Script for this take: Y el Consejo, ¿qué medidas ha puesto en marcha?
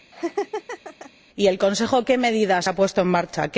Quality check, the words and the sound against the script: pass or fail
fail